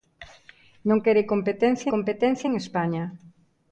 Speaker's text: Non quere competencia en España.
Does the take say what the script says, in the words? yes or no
no